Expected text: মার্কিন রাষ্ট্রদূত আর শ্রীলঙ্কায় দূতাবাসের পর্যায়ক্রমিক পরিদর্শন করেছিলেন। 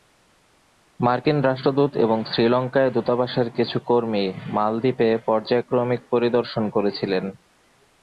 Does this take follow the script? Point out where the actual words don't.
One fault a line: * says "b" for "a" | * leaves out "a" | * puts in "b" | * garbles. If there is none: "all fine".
* says "এবং" for "আর"
* puts in "কিছু কর্মী মালদ্বীপে"